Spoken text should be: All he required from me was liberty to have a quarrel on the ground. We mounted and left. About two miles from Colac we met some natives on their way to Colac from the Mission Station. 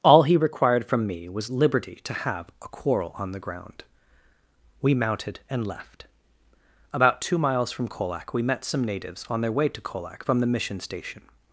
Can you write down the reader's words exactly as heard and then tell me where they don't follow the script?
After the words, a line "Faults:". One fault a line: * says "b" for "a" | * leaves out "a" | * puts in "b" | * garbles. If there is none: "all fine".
All he required from me was liberty to have a quarrel on the ground. We mounted and left. About two miles from Colac we met some natives on their way to Colac from the Mission Station.
Faults:
all fine